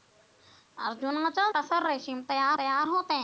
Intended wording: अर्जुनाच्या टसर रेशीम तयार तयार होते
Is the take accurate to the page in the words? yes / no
yes